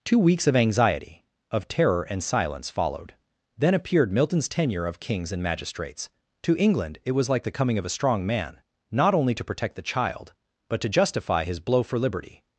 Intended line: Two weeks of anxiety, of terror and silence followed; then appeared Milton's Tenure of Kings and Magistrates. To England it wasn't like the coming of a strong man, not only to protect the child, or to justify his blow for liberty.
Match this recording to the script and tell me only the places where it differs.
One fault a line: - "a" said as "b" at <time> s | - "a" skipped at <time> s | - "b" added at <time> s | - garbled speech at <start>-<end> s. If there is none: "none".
- "wasn't" said as "was" at 7.1 s
- "or" said as "but" at 10.7 s